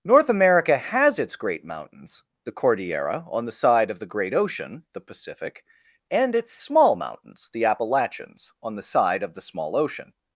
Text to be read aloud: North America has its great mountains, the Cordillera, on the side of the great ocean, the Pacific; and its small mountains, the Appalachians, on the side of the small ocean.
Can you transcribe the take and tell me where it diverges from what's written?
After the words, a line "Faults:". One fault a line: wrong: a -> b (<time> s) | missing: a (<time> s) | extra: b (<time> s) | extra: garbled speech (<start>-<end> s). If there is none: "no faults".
North America has its great mountains, the Cordillera, on the side of the great ocean, the Pacific; and its small mountains, the Appalachians, on the side of the small ocean.
Faults:
no faults